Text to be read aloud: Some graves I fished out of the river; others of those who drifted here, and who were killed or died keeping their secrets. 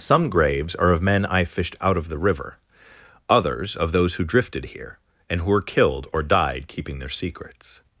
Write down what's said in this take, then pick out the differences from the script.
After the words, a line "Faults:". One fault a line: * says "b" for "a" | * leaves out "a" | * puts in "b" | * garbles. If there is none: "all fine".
Some graves are of men I fished out of the river; others of those who drifted here, and who were killed or died keeping their secrets.
Faults:
* puts in "are of men"